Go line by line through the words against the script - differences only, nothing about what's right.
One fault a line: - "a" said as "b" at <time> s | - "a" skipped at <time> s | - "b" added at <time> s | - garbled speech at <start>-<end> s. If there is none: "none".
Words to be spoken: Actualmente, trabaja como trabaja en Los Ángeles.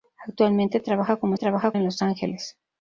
none